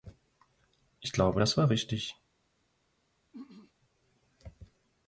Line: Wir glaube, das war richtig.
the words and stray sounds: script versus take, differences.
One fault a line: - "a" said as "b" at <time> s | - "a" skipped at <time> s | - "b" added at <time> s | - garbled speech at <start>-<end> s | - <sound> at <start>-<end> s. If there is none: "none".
- "Wir" said as "Ich" at 1.0 s
- throat clearing at 3.3-3.7 s